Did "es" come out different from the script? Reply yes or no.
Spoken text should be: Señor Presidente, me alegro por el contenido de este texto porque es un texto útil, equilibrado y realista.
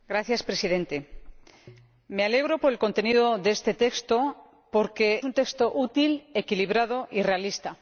yes